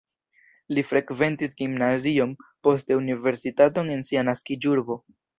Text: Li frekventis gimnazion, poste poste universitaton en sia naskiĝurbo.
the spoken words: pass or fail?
fail